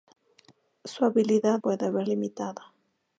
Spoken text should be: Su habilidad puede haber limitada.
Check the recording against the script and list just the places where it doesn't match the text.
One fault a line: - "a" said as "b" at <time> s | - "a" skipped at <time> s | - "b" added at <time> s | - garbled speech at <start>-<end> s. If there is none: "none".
none